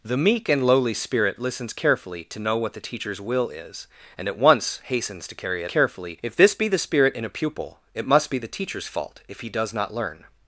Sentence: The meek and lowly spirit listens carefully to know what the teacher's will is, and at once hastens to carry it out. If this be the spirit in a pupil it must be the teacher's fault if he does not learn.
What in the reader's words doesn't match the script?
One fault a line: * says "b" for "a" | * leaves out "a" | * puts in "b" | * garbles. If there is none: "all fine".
* says "carefully" for "out"